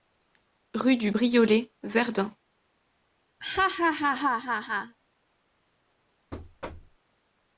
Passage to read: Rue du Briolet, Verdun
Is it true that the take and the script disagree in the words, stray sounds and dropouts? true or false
true